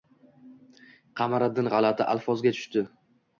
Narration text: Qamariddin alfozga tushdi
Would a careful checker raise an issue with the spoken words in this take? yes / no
yes